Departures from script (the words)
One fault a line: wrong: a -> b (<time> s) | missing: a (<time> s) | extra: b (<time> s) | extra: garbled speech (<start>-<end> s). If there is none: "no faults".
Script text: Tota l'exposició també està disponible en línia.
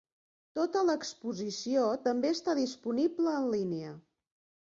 no faults